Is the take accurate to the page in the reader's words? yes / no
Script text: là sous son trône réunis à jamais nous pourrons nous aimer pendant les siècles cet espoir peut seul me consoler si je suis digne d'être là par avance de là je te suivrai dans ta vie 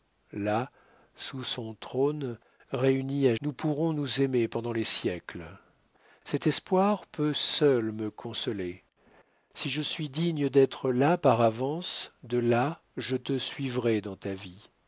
no